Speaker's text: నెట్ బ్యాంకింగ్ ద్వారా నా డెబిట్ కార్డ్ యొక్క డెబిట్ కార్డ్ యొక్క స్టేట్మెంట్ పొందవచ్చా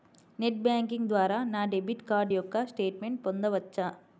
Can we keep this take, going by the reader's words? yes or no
no